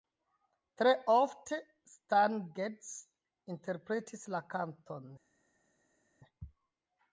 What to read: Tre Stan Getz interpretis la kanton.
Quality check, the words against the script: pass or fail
fail